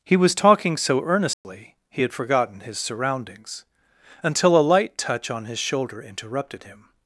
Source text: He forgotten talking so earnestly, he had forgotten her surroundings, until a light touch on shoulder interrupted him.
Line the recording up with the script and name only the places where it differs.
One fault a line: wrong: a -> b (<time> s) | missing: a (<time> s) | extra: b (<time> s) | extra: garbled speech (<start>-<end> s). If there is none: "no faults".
wrong: forgotten -> was (0.2 s)
wrong: her -> his (2.6 s)
extra: his (5.4 s)